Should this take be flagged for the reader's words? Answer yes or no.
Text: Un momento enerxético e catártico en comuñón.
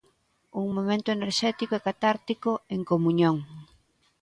no